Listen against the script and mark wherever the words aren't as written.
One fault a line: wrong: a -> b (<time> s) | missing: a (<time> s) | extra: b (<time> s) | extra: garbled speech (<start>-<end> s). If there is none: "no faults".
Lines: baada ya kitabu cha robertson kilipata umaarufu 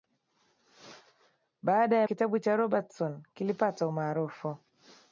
no faults